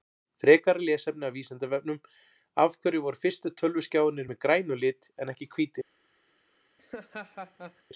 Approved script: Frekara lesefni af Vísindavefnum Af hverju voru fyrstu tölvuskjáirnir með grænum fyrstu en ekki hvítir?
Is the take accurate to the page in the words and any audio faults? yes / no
no